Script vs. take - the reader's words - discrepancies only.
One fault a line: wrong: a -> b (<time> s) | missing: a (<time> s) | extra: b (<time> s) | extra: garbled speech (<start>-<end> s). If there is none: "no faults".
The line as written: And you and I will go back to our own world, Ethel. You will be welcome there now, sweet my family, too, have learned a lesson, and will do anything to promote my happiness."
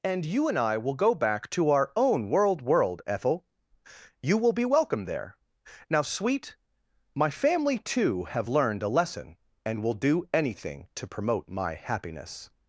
extra: world (2.6 s)